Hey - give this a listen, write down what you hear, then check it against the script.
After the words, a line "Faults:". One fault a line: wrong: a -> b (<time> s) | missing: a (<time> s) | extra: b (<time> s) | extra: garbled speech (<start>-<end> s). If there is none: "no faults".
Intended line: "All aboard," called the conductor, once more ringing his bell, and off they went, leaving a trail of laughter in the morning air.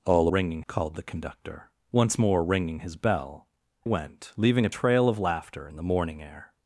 "All ringing," called the conductor, once more ringing his bell, went, leaving a trail of laughter in the morning air.
Faults:
wrong: aboard -> ringing (0.3 s)
missing: and off they (3.5 s)